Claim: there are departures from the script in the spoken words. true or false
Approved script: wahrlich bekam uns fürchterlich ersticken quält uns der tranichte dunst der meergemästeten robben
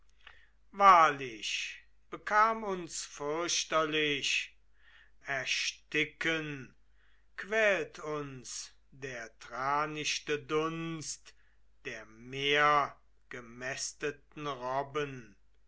false